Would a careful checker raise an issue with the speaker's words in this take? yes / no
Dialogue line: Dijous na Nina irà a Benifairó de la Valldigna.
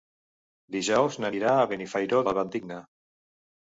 yes